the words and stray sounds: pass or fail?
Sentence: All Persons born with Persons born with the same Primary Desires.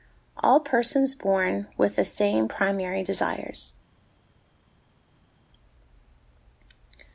fail